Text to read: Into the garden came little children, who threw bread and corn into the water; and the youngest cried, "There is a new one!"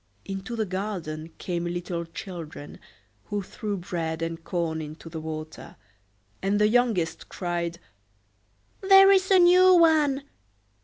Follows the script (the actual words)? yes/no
yes